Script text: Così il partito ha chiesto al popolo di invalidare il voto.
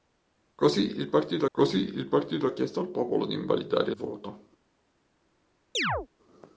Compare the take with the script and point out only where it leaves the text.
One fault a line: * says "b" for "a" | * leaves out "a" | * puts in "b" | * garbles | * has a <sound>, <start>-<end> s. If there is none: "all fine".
* puts in "così il partito"
* leaves out "il"
* has a chirp, 5.7-6.1 s